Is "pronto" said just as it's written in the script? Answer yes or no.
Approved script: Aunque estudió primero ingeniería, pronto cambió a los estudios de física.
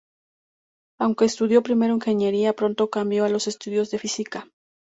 yes